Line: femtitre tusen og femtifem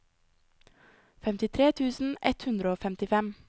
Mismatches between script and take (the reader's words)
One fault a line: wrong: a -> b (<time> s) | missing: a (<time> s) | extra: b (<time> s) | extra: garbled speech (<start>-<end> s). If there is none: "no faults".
extra: ett hundre (2.3 s)